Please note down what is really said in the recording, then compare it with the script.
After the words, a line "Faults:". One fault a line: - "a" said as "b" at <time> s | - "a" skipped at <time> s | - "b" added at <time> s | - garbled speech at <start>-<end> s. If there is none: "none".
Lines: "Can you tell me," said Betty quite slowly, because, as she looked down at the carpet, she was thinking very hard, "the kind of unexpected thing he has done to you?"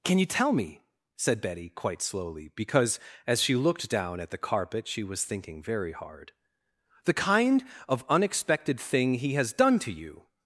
"Can you tell me," said Betty quite slowly, because, as she looked down at the carpet, she was thinking very hard, "the kind of unexpected thing he has done to you?"
Faults:
none